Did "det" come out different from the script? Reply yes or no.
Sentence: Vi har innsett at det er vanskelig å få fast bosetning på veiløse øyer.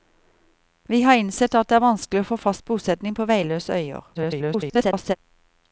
no